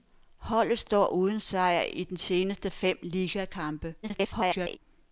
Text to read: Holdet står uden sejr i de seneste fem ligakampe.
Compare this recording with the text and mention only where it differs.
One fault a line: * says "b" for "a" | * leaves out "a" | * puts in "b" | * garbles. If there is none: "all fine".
* garbles